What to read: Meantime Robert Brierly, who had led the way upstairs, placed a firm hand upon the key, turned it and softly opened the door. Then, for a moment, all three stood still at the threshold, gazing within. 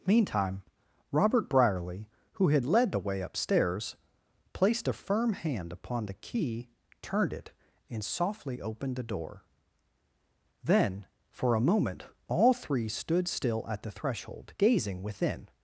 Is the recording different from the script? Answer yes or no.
no